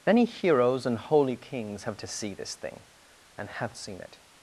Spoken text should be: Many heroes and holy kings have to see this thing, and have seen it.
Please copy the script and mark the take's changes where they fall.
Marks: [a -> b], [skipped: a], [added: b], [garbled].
Many heroes and holy kings have to see this thing, and have seen it.